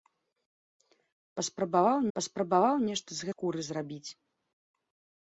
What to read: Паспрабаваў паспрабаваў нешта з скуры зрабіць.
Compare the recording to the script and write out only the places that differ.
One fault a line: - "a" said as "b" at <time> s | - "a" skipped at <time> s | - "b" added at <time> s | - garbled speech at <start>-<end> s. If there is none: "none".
none